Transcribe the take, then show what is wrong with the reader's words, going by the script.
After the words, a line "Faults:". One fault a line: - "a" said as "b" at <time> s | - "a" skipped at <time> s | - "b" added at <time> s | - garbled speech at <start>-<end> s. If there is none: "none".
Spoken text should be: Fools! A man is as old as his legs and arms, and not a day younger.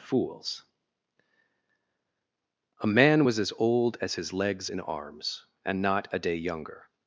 Fools! A man was as old as his legs and arms, and not a day younger.
Faults:
- "is" said as "was" at 3.2 s